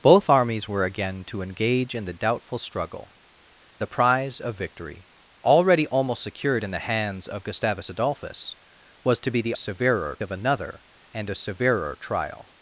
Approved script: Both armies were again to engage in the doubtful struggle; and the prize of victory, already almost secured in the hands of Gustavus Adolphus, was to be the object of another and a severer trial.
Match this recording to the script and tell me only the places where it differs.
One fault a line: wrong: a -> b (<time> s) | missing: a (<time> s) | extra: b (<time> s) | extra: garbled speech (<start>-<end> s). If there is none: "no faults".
missing: and (3.1 s)
wrong: object -> severer (9.6 s)